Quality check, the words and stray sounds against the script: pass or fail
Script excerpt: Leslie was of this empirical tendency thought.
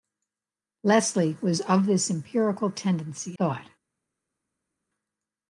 pass